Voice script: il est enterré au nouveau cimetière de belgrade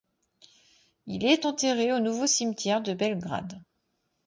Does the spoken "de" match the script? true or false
true